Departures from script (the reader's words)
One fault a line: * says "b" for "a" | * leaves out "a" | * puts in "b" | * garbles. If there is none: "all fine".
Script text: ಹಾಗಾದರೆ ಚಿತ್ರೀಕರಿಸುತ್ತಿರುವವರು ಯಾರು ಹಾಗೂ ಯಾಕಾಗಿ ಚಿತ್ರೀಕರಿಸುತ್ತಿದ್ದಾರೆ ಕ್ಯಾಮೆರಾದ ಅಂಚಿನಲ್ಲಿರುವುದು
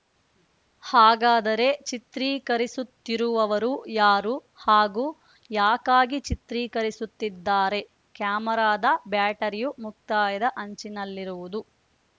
* puts in "ಬ್ಯಾಟರಿಯು ಮುಕ್ತಾಯದ"